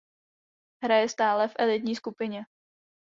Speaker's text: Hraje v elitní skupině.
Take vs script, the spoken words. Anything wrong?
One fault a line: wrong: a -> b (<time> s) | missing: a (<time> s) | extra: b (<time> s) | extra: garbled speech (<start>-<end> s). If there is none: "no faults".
extra: stále (1.1 s)